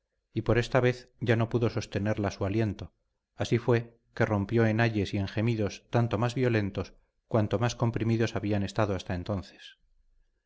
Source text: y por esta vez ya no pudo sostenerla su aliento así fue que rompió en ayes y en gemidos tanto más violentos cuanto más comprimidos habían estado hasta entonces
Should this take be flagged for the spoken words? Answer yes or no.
no